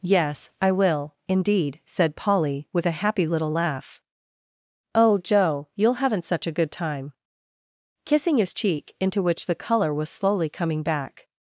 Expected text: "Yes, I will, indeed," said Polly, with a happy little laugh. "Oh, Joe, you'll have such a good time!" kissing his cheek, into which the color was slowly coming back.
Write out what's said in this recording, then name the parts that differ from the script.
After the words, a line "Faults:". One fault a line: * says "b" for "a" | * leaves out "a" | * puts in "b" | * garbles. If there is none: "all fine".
"Yes, I will, indeed," said Polly, with a happy little laugh. "Oh, Joe, you'll haven't such a good time!" kissing his cheek, into which the color was slowly coming back.
Faults:
* says "haven't" for "have"